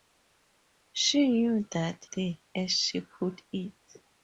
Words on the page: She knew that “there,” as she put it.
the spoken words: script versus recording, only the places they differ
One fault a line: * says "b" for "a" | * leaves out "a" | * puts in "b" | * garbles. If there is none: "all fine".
all fine